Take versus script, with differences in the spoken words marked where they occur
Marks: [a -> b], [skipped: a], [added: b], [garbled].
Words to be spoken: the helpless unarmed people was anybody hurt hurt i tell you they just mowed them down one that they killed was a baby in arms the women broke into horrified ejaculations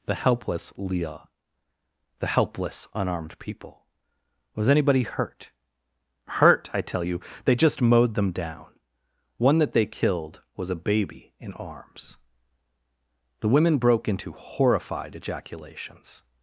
the helpless [added: leah the helpless] unarmed people was anybody hurt hurt i tell you they just mowed them down one that they killed was a baby in arms the women broke into horrified ejaculations